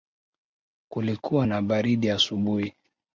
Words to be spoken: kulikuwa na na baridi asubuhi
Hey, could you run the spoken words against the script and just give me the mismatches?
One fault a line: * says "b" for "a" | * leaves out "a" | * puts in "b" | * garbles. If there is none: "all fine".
* leaves out "na"